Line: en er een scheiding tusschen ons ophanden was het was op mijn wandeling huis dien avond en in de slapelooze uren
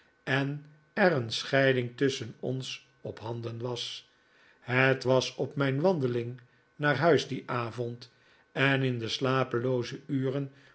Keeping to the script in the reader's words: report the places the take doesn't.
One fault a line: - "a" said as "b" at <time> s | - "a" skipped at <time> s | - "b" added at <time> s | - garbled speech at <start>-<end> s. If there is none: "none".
- "naar" added at 6.8 s